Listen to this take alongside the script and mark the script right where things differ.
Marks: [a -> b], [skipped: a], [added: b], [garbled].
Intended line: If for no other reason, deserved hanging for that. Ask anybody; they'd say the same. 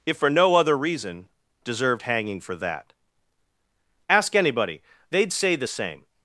If for no other reason, deserved hanging for that. Ask anybody; they'd say the same.